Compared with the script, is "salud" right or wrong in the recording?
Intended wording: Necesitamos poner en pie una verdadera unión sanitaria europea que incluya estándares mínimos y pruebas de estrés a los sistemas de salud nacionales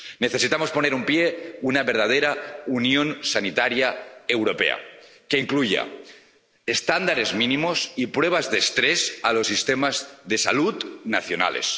right